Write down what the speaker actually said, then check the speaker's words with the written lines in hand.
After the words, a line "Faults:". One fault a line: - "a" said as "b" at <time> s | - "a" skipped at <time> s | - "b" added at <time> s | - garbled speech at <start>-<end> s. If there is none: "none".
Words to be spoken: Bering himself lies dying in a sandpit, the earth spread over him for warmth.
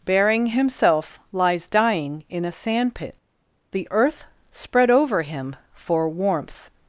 Bering himself lies dying in a sandpit, the earth spread over him for warmth.
Faults:
none